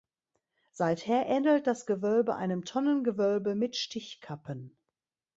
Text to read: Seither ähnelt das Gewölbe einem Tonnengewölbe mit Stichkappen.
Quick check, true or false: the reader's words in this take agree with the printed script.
true